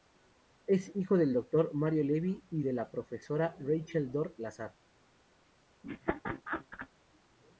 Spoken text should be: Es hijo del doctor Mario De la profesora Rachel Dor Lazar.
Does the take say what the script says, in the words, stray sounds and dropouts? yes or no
no